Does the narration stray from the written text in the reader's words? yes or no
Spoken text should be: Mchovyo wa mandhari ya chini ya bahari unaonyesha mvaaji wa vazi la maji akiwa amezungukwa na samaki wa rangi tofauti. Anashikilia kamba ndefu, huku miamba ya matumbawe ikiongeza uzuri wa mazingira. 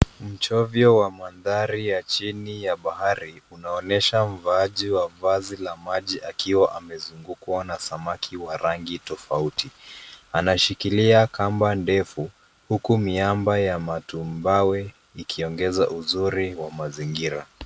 no